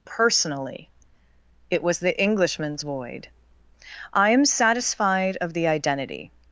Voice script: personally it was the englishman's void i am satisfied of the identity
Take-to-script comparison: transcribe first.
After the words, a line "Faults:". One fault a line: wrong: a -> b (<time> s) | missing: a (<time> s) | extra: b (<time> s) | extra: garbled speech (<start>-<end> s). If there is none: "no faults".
personally it was the englishman's void i am satisfied of the identity
Faults:
no faults